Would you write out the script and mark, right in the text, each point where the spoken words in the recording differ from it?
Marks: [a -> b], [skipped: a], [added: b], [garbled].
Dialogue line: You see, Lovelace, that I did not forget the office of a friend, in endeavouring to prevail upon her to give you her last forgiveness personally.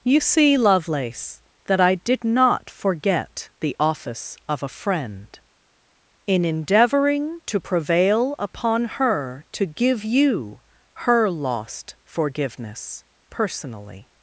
You see, Lovelace, that I did not forget the office of a friend, in endeavouring to prevail upon her to give you her [last -> lost] forgiveness personally.